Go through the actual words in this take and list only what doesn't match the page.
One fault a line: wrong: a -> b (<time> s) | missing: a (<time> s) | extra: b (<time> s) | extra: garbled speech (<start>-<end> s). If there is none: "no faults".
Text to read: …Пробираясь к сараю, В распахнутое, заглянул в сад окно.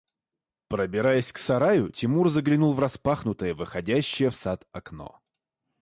extra: Тимур заглянул (1.9 s)
wrong: заглянул -> выходящее (3.5 s)